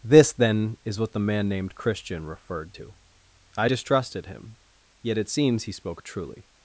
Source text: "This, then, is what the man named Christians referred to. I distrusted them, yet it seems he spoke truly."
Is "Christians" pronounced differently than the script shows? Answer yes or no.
yes